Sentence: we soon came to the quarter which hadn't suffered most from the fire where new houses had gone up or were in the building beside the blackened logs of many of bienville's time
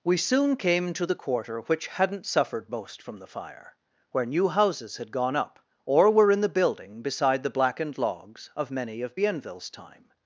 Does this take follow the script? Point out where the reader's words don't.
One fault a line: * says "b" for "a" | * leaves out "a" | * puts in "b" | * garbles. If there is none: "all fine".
all fine